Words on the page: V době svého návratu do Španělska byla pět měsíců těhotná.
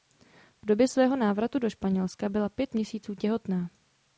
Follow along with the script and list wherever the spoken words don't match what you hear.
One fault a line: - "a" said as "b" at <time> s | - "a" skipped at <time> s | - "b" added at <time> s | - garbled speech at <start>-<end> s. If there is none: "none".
none